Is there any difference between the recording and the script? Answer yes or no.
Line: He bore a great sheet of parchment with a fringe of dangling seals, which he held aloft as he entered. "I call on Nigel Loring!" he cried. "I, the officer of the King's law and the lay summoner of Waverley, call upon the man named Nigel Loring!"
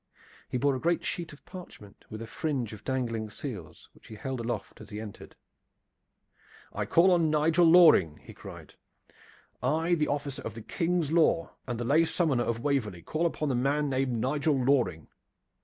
no